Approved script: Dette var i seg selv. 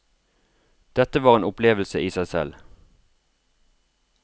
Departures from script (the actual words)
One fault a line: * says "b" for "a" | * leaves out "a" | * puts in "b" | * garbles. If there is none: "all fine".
* puts in "en opplevelse"